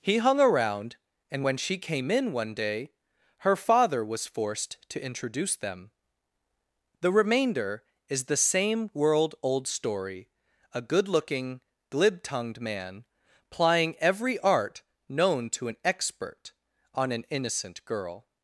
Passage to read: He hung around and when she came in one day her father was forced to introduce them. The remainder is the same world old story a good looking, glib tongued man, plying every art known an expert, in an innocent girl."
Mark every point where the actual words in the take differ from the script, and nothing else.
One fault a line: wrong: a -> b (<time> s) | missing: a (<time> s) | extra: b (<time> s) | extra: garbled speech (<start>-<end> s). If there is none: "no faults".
extra: to (15.5 s)
wrong: in -> on (16.9 s)